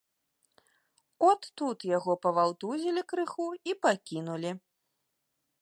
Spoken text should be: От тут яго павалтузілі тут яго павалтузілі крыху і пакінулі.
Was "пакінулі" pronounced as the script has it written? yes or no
yes